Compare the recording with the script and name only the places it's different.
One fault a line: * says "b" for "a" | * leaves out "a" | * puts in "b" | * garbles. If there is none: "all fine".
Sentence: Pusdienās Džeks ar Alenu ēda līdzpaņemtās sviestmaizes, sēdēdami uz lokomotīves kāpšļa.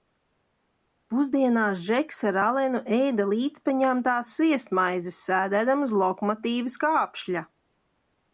all fine